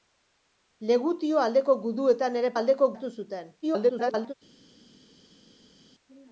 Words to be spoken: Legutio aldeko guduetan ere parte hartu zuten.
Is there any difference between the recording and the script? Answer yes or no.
yes